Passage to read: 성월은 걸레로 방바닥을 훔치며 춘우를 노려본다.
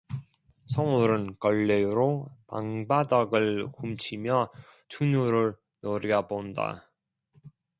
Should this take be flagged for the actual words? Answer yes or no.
no